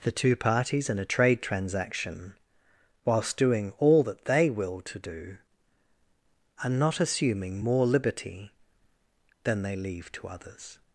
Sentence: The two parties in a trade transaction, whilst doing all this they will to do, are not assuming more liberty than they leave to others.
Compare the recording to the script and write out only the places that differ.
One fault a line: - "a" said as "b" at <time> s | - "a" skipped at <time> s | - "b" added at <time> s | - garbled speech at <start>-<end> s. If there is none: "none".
- "this" said as "that" at 4.0 s